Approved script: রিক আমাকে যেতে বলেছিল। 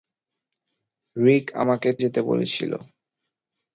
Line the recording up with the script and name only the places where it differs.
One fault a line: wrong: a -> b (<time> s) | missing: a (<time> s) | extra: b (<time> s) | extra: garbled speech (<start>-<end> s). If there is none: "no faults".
no faults